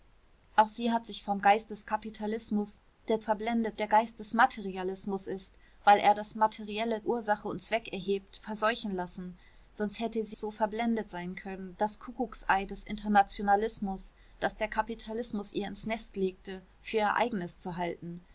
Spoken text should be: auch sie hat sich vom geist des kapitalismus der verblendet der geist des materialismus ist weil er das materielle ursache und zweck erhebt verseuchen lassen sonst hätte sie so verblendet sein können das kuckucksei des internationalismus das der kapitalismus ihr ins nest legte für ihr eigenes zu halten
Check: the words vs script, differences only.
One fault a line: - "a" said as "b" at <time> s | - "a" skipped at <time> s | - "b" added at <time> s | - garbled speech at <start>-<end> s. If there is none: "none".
none